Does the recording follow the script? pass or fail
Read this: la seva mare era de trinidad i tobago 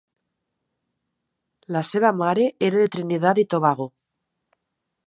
pass